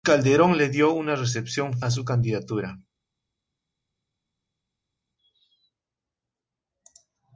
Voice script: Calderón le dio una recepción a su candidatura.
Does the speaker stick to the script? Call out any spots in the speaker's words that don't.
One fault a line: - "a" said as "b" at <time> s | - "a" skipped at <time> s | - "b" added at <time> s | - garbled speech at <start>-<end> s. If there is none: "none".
none